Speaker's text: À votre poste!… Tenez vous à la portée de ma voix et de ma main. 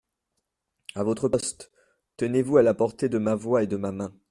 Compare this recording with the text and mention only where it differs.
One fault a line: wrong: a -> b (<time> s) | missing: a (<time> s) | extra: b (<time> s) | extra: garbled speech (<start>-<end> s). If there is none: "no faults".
no faults